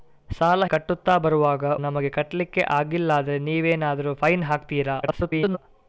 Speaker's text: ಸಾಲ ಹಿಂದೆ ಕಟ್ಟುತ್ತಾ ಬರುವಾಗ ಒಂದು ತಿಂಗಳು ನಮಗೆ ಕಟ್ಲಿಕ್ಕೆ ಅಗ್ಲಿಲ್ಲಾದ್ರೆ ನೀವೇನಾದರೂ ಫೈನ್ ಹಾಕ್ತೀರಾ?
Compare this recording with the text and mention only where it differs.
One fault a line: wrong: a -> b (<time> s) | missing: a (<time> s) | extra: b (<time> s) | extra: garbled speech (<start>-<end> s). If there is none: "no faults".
missing: ಹಿಂದೆ (0.7 s)
missing: ಒಂದು ತಿಂಗಳು (1.6 s)
extra: garbled speech (5.0-5.6 s)